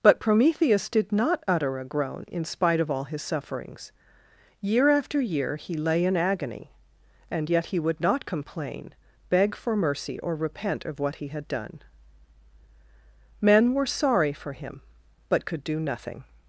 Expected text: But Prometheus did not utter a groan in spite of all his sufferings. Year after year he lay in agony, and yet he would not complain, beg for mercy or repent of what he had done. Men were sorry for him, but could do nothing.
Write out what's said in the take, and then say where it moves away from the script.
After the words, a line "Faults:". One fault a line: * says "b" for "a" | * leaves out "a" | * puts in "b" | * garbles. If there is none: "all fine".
But Prometheus did not utter a groan in spite of all his sufferings. Year after year he lay in agony, and yet he would not complain, beg for mercy or repent of what he had done. Men were sorry for him, but could do nothing.
Faults:
all fine